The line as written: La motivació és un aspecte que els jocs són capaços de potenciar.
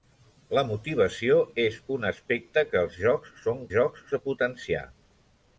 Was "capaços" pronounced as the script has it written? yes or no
no